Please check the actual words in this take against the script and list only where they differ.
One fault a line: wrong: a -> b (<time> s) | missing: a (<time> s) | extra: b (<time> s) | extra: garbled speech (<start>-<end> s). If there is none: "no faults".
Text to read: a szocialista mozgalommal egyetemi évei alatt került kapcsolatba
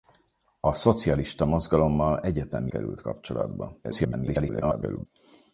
missing: évei alatt (2.7 s)
extra: garbled speech (3.8-5.1 s)